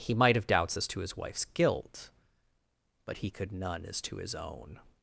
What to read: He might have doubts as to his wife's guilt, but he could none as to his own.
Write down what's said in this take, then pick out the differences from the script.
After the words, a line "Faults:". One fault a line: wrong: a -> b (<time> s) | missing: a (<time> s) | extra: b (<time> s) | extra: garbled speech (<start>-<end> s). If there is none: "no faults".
He might have doubts as to his wife's guilt, but he could none as to his own.
Faults:
no faults